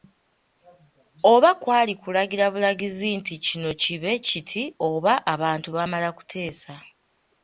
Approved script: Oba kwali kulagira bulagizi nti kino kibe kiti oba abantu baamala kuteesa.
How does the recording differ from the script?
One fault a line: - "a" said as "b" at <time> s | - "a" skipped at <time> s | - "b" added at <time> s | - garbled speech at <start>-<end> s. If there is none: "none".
none